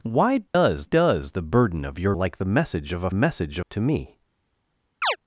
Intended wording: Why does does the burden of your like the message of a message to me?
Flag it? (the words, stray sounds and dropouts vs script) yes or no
yes